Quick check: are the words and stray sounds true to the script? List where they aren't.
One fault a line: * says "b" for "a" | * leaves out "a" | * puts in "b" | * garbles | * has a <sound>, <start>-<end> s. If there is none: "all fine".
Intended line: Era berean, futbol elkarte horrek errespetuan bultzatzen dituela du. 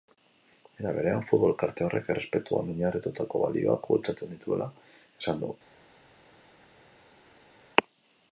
* puts in "oinarritutako balioak"
* puts in "esan"